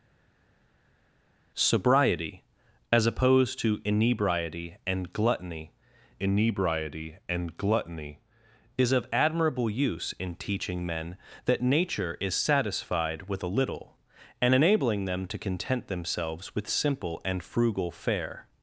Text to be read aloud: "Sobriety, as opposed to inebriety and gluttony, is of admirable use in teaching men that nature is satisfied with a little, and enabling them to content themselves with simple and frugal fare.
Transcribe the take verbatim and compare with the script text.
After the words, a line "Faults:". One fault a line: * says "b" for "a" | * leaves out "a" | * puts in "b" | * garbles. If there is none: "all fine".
"Sobriety, as opposed to inebriety and gluttony inebriety and gluttony, is of admirable use in teaching men that nature is satisfied with a little, and enabling them to content themselves with simple and frugal fare.
Faults:
* puts in "inebriety and gluttony"